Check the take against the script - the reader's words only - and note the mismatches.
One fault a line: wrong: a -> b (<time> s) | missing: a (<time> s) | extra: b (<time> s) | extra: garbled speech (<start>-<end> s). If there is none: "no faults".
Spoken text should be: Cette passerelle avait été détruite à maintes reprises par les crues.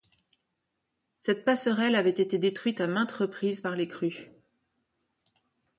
no faults